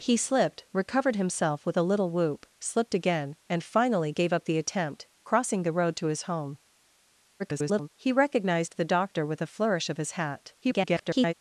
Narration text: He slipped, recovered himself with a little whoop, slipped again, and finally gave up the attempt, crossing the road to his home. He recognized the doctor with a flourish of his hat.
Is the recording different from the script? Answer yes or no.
yes